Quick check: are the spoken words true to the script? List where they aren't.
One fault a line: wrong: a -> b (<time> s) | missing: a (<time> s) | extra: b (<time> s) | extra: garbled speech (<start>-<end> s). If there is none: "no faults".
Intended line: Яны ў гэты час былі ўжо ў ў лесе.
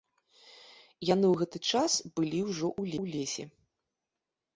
no faults